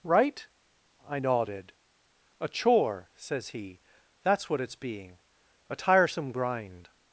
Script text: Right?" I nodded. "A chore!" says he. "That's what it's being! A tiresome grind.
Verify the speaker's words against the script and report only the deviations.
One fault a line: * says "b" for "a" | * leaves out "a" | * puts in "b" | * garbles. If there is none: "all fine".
all fine